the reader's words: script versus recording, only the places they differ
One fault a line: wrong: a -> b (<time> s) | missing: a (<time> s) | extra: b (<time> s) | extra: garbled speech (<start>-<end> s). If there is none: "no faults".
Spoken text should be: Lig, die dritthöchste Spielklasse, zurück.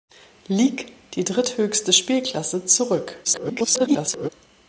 extra: garbled speech (3.2-4.3 s)